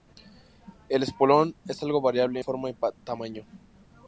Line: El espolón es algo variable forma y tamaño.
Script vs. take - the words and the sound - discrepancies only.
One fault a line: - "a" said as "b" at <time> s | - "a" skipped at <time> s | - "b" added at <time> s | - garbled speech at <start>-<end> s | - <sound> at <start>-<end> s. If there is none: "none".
none